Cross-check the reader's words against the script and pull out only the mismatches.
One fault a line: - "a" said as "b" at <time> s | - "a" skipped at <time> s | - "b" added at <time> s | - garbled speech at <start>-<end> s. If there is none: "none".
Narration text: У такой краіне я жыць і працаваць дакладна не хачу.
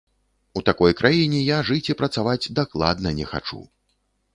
none